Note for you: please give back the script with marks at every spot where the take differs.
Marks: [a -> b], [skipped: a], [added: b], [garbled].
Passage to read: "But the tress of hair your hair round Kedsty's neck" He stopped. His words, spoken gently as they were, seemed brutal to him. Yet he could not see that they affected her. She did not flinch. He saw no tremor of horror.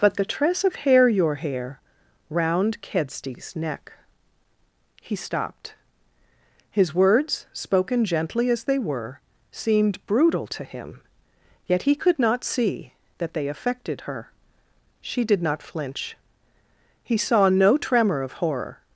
"But the tress of hair your hair round Kedsty's neck" He stopped. His words, spoken gently as they were, seemed brutal to him. Yet he could not see that they affected her. She did not flinch. He saw no tremor of horror.